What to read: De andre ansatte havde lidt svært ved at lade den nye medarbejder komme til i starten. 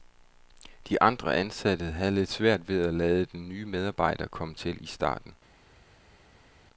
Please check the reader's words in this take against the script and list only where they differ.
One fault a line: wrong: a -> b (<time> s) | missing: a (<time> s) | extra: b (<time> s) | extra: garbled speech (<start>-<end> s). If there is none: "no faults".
no faults